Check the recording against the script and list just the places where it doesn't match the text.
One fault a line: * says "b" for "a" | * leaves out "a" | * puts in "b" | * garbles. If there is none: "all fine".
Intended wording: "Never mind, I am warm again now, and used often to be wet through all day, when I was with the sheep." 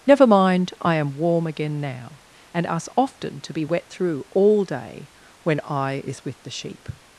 * says "us" for "used"
* says "is" for "was"